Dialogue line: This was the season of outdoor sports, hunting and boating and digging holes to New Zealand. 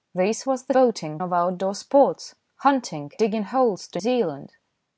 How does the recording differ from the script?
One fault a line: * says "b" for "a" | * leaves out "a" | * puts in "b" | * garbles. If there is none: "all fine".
* says "boating" for "season"
* leaves out "and boating and"
* leaves out "New"